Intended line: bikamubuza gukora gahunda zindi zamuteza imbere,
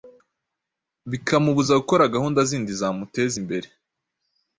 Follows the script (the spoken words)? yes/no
yes